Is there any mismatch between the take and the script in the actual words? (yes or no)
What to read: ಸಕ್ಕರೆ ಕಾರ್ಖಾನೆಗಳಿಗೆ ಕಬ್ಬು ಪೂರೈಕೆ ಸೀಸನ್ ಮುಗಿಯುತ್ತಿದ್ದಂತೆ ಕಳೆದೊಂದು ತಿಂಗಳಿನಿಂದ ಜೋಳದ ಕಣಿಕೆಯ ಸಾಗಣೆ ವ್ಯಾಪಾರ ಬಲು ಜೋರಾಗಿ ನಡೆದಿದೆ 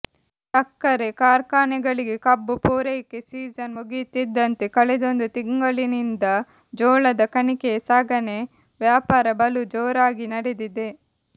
no